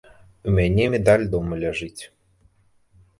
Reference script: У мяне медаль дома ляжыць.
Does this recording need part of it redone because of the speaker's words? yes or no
no